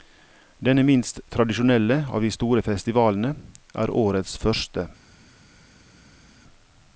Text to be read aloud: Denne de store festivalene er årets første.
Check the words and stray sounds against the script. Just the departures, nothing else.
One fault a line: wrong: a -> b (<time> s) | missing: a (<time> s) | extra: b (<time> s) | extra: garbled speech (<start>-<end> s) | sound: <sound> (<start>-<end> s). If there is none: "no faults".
extra: minst tradisjonelle av (0.8 s)